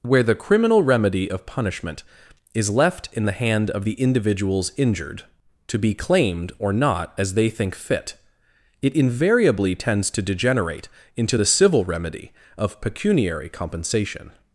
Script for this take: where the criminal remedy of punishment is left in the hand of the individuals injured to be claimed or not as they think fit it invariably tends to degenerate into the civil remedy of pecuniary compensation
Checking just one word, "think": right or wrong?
right